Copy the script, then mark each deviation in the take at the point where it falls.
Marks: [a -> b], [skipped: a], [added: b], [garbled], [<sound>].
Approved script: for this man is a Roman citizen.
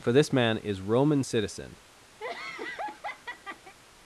for this man is [skipped: a] Roman citizen. [laugh]